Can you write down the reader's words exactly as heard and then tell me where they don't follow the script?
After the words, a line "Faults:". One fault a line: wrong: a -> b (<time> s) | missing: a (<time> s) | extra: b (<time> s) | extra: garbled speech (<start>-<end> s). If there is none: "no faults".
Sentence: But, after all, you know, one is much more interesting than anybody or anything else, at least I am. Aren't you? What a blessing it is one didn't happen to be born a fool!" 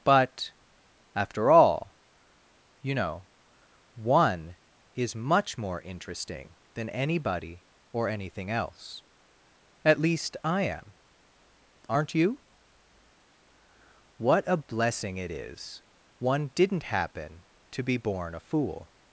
But, after all, you know, one is much more interesting than anybody or anything else, at least I am. Aren't you? What a blessing it is one didn't happen to be born a fool!"
Faults:
no faults